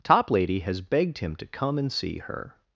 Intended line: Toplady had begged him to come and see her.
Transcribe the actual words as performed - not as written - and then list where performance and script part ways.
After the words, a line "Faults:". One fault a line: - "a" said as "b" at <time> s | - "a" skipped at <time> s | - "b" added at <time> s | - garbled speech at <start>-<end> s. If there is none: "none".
Toplady has begged him to come and see her.
Faults:
- "had" said as "has" at 0.6 s